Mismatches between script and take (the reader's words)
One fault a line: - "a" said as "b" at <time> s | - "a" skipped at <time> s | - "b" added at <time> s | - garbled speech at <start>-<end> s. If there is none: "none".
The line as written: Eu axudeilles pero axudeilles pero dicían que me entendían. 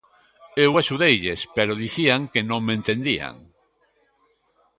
- "axudeilles pero" skipped at 1.8 s
- "non" added at 2.5 s